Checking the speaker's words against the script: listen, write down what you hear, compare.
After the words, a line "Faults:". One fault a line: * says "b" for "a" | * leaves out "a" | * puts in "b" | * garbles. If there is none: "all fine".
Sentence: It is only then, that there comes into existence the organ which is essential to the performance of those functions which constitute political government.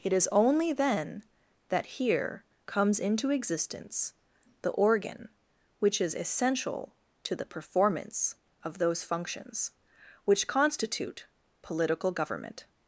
It is only then, that here comes into existence the organ which is essential to the performance of those functions which constitute political government.
Faults:
* says "here" for "there"